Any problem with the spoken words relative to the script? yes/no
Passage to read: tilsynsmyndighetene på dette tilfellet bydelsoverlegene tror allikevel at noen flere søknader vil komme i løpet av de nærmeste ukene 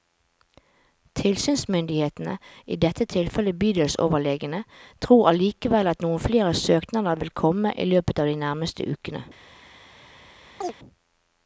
yes